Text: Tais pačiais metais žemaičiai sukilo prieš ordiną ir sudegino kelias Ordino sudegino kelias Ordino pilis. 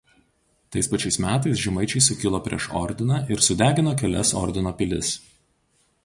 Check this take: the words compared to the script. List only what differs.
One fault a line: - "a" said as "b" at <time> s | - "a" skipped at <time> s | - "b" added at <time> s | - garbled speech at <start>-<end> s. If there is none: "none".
- "sudegino kelias Ordino" skipped at 4.7 s